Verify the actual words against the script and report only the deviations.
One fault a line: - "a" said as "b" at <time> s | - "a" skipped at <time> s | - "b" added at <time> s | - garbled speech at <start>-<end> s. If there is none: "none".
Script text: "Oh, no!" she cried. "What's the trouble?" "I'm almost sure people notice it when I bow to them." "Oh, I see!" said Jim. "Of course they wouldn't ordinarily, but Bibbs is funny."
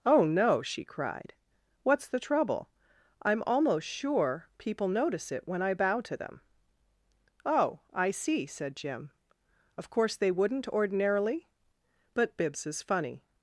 none